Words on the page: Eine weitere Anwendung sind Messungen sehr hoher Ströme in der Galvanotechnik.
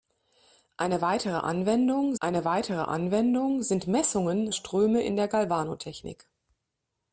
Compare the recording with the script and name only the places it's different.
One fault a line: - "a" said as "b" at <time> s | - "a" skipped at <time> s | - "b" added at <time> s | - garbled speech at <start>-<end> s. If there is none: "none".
- "eine weitere Anwendung" added at 2.2 s
- "sehr hoher" skipped at 4.5 s